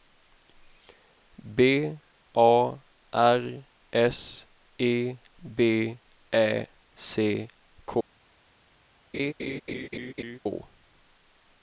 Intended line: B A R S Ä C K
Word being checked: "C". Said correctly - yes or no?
yes